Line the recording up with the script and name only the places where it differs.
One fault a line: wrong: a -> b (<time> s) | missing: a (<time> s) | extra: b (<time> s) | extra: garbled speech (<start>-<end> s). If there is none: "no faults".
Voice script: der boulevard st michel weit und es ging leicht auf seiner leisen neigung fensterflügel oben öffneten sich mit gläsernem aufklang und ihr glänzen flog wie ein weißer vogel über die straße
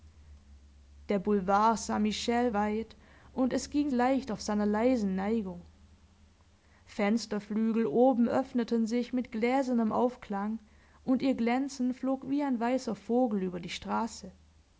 no faults